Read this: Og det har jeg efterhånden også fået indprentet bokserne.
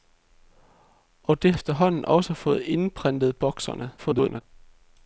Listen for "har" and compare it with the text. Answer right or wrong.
wrong